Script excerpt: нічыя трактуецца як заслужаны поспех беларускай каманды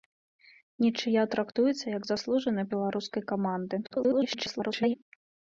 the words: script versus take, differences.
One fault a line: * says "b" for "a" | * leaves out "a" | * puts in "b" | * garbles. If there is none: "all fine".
* leaves out "поспех"
* garbles